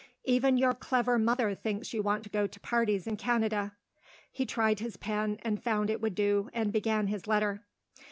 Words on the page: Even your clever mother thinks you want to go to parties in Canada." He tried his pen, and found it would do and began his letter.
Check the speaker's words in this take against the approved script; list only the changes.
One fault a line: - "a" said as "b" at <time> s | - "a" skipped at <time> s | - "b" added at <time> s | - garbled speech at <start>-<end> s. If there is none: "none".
none